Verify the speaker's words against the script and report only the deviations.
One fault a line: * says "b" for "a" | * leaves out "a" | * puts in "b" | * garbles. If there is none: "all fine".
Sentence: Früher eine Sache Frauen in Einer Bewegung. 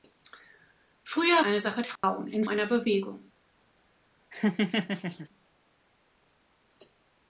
all fine